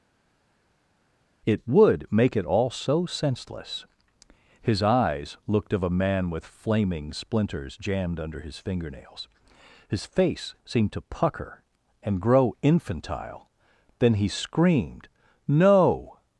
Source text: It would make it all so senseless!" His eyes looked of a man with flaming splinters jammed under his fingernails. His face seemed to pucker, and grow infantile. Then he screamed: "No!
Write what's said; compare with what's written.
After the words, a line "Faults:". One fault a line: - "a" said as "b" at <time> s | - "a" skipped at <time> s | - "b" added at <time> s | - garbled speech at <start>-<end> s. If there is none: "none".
It would make it all so senseless!" His eyes looked of a man with flaming splinters jammed under his fingernails. His face seemed to pucker, and grow infantile. Then he screamed: "No!
Faults:
none